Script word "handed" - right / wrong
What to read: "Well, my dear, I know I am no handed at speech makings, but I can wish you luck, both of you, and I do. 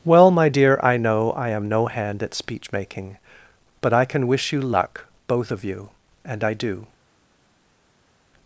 wrong